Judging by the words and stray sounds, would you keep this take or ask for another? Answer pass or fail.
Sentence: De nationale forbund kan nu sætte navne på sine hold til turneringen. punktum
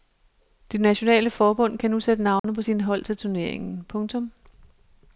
fail